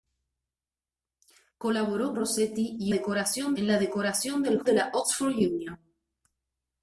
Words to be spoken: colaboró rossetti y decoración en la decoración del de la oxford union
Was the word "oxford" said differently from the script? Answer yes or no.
no